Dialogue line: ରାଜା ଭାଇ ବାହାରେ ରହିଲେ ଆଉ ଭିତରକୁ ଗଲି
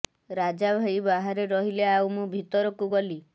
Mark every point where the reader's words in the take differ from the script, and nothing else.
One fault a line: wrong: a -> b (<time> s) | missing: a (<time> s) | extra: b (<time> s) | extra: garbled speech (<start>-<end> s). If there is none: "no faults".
extra: ମୁଁ (2.1 s)